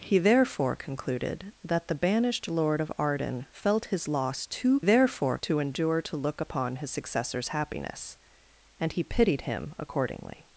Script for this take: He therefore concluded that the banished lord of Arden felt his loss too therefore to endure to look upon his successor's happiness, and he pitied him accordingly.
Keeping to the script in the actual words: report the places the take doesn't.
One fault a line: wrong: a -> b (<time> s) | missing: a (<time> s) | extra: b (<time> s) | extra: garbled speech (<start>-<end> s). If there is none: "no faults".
no faults